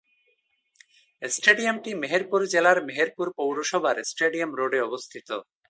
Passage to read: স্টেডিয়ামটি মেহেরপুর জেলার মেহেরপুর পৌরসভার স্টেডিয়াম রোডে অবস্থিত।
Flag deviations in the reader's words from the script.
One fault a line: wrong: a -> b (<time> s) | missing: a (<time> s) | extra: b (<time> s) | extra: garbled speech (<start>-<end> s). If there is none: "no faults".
no faults